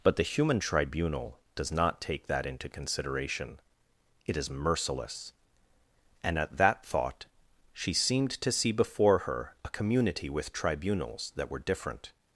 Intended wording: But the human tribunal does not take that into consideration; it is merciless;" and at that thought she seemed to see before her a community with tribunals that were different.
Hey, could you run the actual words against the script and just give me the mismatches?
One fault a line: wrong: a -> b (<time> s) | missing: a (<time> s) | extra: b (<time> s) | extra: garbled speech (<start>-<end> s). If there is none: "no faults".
no faults